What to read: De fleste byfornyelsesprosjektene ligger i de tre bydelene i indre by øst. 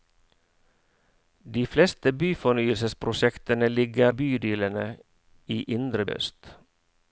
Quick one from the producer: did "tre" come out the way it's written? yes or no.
no